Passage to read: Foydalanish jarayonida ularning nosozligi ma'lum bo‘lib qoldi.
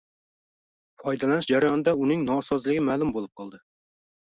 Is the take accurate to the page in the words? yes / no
no